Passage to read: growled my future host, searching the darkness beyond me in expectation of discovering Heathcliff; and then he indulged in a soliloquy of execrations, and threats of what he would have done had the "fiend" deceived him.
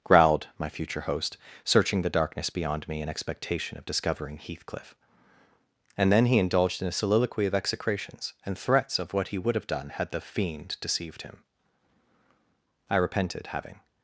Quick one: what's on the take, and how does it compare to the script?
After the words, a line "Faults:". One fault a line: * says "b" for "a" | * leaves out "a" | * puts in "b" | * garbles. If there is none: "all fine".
growled my future host, searching the darkness beyond me in expectation of discovering Heathcliff; and then he indulged in a soliloquy of execrations, and threats of what he would have done had the "fiend" deceived him. I repented having
Faults:
* puts in "I repented having"